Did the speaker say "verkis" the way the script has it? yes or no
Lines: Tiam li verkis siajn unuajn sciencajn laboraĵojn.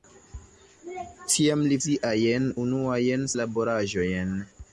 no